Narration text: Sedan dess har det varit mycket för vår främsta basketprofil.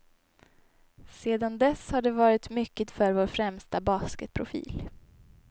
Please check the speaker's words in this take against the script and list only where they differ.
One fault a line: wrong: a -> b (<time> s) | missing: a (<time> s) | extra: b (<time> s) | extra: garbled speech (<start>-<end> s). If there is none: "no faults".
no faults